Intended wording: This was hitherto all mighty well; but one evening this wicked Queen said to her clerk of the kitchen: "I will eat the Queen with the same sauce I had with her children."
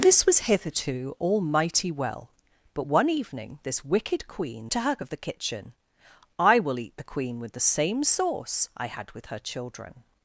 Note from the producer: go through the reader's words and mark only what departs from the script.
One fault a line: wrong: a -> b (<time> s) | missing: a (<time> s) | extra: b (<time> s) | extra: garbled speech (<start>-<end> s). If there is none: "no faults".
missing: said (4.7 s)
missing: clerk (5.0 s)